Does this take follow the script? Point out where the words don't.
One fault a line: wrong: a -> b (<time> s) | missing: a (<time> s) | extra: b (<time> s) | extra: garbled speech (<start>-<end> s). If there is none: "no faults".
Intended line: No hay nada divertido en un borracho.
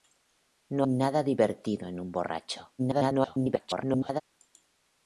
missing: hay (0.9 s)
extra: garbled speech (2.8-4.2 s)